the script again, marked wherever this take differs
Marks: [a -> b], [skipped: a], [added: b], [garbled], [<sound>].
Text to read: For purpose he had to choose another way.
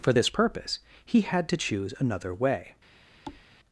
For [added: this] purpose he had to choose another way. [thud]